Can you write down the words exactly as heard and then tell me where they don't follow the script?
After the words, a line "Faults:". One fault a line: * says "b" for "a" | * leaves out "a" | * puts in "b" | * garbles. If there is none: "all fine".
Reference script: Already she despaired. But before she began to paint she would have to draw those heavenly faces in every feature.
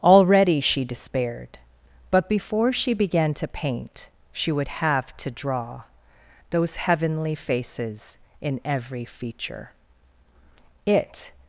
Already she despaired. But before she began to paint she would have to draw those heavenly faces in every feature. It
Faults:
* puts in "It"